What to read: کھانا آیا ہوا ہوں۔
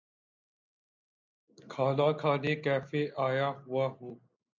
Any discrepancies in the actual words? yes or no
yes